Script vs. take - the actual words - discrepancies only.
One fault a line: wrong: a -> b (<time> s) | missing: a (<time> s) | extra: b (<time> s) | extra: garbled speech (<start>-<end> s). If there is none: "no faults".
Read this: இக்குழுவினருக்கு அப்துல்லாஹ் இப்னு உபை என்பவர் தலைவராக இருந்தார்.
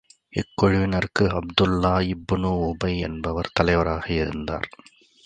no faults